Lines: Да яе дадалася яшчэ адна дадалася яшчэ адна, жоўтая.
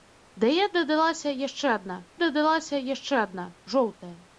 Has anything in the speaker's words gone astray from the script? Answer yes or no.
no